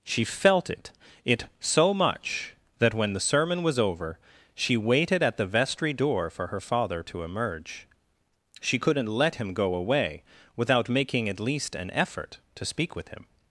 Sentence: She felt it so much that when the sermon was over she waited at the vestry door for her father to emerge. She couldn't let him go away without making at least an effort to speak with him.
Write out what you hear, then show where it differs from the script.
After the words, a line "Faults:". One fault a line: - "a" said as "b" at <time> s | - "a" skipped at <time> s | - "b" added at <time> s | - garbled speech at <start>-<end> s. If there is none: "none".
She felt it it so much that when the sermon was over she waited at the vestry door for her father to emerge. She couldn't let him go away without making at least an effort to speak with him.
Faults:
- "it" added at 1.2 s